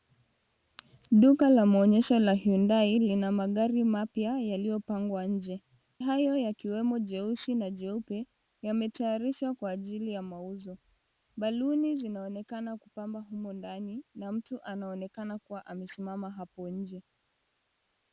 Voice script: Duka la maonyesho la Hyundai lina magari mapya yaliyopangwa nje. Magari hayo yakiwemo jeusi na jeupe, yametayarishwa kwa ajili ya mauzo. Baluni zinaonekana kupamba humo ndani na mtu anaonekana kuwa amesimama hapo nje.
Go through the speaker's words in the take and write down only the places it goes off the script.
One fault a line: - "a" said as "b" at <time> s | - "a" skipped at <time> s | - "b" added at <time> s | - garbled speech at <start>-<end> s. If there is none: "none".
- "Magari" skipped at 5.6 s